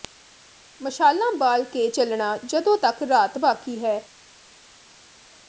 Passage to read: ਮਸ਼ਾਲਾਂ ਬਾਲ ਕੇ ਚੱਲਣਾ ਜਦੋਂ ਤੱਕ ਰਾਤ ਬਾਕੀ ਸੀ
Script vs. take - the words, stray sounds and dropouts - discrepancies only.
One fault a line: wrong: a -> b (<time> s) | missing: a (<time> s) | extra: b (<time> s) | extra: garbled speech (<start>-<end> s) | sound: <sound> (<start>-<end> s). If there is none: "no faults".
wrong: ਸੀ -> ਹੈ (3.8 s)